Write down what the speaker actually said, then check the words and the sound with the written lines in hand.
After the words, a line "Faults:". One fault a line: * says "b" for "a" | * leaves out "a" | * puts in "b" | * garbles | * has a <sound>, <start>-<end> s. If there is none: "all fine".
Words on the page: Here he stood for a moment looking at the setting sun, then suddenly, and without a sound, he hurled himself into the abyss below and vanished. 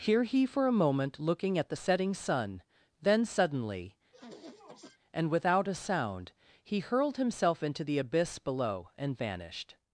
Here he for a moment looking at the setting sun, then suddenly, and without a sound, he hurled himself into the abyss below and vanished.
Faults:
* leaves out "stood"
* has a sniff, 4.1-5.0 s